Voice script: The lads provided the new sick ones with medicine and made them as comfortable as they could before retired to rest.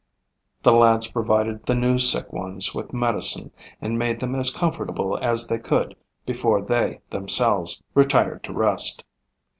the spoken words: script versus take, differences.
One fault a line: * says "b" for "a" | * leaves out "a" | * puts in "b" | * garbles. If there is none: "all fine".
* puts in "they themselves"